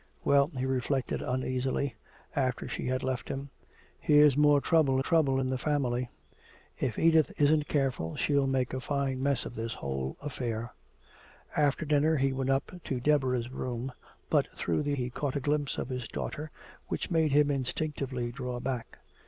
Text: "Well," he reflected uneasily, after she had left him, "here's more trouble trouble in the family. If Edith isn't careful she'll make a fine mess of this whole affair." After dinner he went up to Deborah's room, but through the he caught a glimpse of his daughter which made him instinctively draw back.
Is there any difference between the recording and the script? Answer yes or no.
no